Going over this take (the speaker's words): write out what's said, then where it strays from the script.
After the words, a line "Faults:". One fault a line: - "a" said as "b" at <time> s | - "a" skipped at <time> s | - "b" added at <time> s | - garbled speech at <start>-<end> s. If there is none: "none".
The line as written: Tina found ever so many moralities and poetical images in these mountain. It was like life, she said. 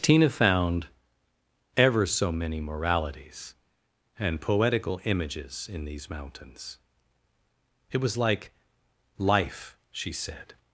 Tina found ever so many moralities and poetical images in these mountains. It was like life, she said.
Faults:
- "mountain" said as "mountains" at 6.1 s